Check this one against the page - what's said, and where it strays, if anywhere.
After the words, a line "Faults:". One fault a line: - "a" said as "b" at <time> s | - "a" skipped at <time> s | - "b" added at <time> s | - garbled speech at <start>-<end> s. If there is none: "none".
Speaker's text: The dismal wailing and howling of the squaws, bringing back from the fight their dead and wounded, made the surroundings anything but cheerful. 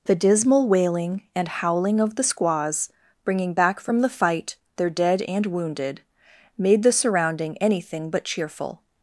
The dismal wailing and howling of the squaws, bringing back from the fight their dead and wounded, made the surrounding anything but cheerful.
Faults:
- "surroundings" said as "surrounding" at 6.9 s